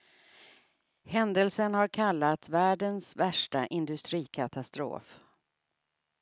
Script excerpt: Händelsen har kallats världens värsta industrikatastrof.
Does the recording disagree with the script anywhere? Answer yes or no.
no